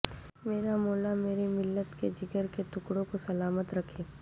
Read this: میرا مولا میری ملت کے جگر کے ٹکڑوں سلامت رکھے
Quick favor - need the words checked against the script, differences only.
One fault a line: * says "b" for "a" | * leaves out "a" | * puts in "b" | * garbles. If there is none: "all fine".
* puts in "کو"